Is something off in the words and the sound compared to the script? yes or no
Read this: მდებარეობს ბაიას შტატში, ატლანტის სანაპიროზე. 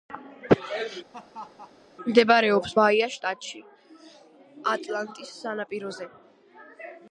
yes